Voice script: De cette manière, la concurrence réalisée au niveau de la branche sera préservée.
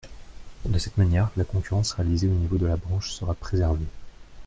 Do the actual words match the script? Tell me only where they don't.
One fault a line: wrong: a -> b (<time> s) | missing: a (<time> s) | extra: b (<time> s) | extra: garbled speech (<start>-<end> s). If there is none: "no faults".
no faults